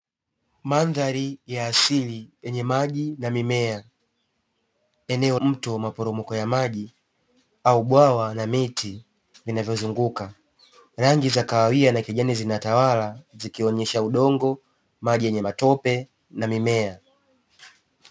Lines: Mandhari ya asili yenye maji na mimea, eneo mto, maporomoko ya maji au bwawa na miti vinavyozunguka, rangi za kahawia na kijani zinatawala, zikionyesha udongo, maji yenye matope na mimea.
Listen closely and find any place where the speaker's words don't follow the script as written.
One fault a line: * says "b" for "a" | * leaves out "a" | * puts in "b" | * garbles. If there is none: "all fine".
all fine